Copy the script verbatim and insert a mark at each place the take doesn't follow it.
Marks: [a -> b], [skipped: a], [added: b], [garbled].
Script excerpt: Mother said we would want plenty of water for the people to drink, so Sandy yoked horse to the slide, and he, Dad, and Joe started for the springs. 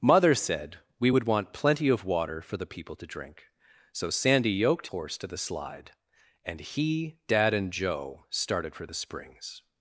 Mother said we would want plenty of water for the people to drink, so Sandy yoked horse to the slide, and he, Dad, and Joe started for the springs.